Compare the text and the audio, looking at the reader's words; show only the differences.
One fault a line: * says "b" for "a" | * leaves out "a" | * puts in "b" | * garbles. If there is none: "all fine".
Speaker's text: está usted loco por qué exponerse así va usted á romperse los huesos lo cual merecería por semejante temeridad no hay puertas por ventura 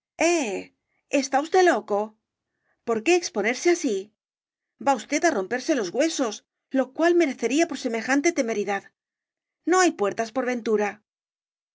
all fine